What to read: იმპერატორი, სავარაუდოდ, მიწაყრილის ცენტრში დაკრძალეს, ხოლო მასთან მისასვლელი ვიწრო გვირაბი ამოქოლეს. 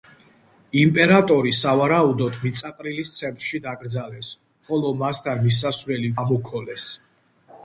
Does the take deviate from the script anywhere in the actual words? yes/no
yes